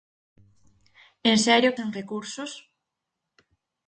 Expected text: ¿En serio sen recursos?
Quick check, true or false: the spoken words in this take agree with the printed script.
true